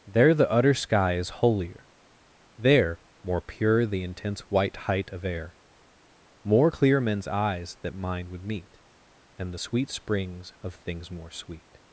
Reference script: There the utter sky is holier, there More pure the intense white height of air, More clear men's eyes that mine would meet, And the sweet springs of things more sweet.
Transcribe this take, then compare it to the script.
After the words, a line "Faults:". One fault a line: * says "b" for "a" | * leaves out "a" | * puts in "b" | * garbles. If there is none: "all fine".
There the utter sky is holier, there More pure the intense white height of air, More clear men's eyes that mine would meet, And the sweet springs of things more sweet.
Faults:
all fine